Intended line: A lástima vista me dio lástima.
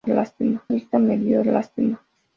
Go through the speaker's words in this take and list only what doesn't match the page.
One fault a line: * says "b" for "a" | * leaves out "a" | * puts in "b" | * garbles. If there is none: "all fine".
all fine